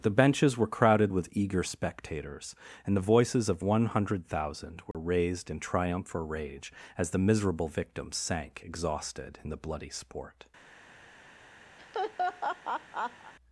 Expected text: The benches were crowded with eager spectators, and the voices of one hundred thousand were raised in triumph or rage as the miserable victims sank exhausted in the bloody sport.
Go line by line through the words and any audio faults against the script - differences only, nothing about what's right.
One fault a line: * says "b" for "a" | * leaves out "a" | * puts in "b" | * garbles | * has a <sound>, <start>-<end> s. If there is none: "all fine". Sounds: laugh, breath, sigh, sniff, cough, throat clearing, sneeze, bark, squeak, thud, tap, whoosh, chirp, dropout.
* has a dropout, 4.9-4.9 s
* has a laugh, 11.8-13.3 s